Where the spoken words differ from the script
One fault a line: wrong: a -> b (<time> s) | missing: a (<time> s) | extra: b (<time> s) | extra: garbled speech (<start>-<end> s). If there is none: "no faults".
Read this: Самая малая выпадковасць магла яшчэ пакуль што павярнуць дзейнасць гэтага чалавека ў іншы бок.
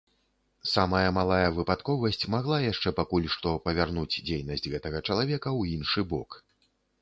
no faults